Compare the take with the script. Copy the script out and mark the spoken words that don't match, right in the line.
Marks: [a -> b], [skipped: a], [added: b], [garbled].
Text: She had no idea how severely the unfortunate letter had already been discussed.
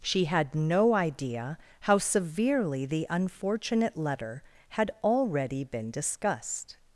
She had no idea how severely the unfortunate letter had already been discussed.